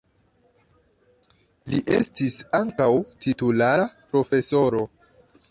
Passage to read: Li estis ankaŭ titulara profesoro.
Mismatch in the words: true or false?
false